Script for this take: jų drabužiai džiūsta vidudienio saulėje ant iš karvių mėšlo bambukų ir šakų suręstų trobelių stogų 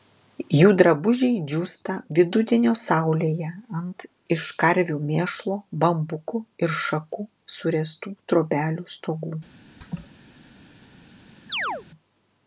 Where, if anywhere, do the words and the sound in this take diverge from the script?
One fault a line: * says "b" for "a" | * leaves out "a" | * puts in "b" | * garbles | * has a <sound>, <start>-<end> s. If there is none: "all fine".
* has a laugh, 9.8-10.1 s
* has a chirp, 11.5-11.9 s